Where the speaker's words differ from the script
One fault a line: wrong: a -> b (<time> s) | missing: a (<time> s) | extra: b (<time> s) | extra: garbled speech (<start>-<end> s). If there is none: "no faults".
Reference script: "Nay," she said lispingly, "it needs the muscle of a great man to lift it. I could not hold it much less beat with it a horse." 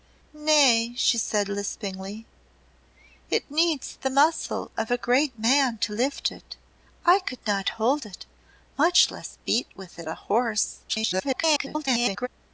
extra: garbled speech (10.9-12.3 s)